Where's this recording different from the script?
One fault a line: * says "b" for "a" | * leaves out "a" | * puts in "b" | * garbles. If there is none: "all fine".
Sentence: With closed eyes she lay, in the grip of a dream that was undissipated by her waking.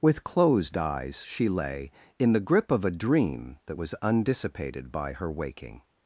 all fine